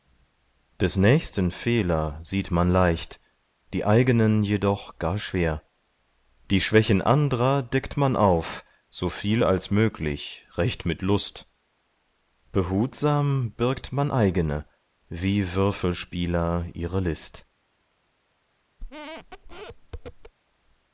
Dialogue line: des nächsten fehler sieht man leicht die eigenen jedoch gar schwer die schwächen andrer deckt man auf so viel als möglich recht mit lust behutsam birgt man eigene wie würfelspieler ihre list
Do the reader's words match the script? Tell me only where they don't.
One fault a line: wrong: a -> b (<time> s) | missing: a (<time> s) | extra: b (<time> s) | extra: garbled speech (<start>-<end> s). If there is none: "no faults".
no faults